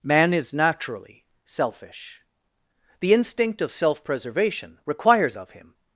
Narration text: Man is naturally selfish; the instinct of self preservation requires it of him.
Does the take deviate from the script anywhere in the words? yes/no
yes